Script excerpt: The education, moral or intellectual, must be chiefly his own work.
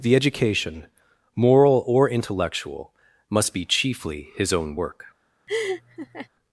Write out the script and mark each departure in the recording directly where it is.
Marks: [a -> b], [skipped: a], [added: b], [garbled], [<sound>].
The education, moral or intellectual, must be chiefly his own work. [laugh]